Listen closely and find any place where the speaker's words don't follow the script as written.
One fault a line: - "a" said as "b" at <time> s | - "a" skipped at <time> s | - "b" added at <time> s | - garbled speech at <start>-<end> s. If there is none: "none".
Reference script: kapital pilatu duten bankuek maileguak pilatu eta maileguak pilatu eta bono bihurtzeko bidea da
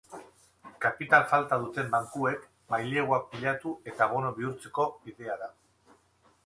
- "pilatu" said as "falta" at 1.3 s
- "maileguak pilatu eta" skipped at 4.1 s